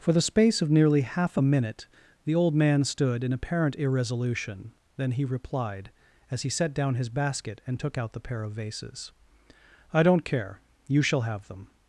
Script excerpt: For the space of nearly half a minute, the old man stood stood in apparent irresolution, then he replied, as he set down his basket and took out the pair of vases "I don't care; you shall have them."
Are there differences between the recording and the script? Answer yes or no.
yes